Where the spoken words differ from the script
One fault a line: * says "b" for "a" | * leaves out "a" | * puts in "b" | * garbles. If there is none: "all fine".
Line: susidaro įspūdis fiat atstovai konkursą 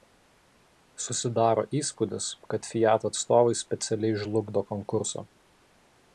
* puts in "kad"
* puts in "specialiai žlugdo"